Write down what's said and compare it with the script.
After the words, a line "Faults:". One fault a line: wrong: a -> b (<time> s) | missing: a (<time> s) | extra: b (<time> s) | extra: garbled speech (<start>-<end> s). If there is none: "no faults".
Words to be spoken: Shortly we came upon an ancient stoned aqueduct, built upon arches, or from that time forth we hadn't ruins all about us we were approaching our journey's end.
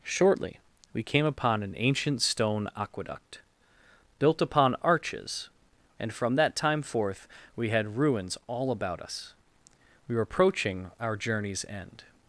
Shortly we came upon an ancient stone aqueduct, built upon arches, and from that time forth we had ruins all about us we were approaching our journey's end.
Faults:
wrong: stoned -> stone (2.2 s)
wrong: or -> and (6.0 s)
wrong: hadn't -> had (7.7 s)